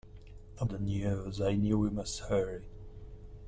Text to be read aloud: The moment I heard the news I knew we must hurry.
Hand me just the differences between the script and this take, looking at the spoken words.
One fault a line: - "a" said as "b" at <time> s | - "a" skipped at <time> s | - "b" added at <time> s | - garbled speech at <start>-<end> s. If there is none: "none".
- "moment I heard" skipped at 0.7 s